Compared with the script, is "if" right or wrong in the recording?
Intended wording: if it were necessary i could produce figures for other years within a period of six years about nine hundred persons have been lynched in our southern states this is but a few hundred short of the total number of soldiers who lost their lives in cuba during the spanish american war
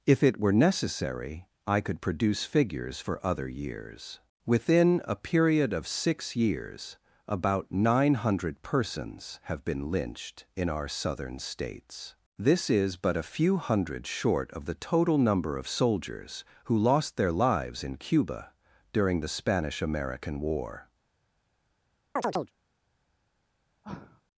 right